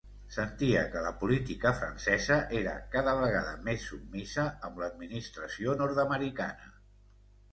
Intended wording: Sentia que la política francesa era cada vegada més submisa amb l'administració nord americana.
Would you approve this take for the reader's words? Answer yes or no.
yes